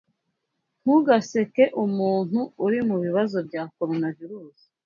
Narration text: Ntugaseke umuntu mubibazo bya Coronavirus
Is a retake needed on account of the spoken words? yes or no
yes